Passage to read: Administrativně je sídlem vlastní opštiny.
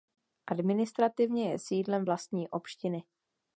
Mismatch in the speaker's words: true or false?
false